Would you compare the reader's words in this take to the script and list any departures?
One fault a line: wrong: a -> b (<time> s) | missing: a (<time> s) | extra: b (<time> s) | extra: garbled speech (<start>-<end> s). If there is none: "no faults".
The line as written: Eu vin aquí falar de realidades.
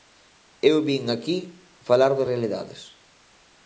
no faults